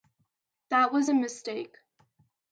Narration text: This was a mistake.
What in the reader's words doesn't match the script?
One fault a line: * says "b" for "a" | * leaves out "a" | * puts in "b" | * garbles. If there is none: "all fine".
* says "That" for "This"